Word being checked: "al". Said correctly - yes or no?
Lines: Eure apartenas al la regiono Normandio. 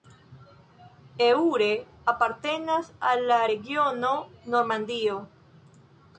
yes